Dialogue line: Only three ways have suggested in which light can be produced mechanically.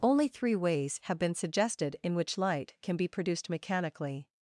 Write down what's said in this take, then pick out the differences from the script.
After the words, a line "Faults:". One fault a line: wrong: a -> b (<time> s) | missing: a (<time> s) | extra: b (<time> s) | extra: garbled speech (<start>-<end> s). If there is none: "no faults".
Only three ways have been suggested in which light can be produced mechanically.
Faults:
extra: been (1.2 s)